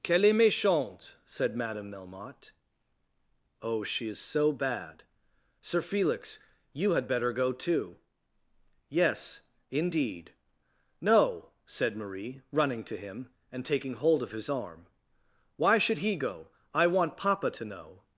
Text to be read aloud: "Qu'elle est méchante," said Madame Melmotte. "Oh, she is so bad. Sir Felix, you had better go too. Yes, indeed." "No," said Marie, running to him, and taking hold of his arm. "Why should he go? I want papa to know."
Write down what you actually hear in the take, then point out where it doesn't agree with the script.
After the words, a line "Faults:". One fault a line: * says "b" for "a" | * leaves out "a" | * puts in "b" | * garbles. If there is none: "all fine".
"Qu'elle est méchante," said Madame Melmotte. "Oh, she is so bad. Sir Felix, you had better go too. Yes, indeed." "No," said Marie, running to him, and taking hold of his arm. "Why should he go? I want papa to know."
Faults:
all fine